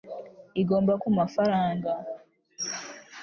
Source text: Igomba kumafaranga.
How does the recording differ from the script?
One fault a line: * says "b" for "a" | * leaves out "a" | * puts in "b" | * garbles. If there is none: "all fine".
all fine